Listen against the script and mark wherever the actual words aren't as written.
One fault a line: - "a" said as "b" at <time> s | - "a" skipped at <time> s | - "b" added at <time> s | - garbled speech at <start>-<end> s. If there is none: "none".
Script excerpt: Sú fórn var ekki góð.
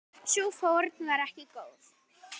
none